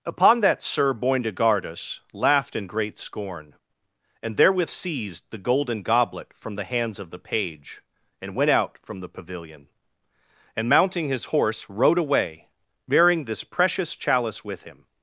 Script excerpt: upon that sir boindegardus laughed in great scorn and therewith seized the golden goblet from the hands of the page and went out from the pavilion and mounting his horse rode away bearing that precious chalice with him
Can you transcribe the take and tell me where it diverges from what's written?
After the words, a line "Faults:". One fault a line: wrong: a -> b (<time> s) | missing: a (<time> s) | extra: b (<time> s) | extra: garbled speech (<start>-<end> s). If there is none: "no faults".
upon that sir boindegardus laughed in great scorn and therewith seized the golden goblet from the hands of the page and went out from the pavilion and mounting his horse rode away bearing this precious chalice with him
Faults:
wrong: that -> this (13.2 s)